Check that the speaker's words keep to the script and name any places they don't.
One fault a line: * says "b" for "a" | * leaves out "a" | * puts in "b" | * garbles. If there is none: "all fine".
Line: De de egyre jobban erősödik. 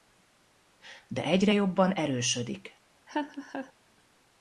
* leaves out "de"